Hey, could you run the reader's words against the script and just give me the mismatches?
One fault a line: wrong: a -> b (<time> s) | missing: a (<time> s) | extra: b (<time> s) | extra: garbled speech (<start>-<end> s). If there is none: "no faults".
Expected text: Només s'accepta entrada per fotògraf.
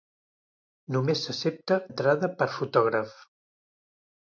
no faults